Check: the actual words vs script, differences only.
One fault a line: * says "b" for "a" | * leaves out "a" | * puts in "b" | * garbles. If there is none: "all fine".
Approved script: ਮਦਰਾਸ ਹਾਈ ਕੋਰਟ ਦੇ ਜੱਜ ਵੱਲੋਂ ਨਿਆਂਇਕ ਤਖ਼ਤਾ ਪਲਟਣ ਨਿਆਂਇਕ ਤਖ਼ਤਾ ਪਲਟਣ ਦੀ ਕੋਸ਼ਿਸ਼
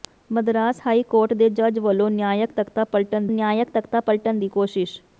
all fine